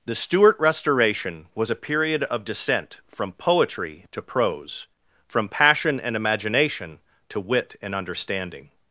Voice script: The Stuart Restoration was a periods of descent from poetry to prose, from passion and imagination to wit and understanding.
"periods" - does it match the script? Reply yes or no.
no